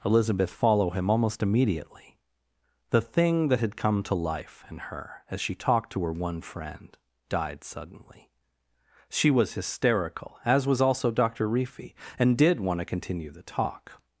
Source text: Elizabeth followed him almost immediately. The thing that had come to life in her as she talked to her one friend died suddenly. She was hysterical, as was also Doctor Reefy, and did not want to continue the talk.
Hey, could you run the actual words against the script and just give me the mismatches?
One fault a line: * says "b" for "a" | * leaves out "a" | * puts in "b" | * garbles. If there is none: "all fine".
* says "follow" for "followed"
* leaves out "not"